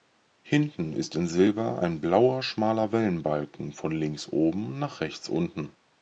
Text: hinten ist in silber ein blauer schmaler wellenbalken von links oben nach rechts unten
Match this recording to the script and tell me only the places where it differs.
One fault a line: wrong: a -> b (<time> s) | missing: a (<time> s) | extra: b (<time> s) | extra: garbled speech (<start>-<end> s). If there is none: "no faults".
no faults